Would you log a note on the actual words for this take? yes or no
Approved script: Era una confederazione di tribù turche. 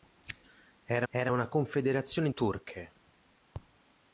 yes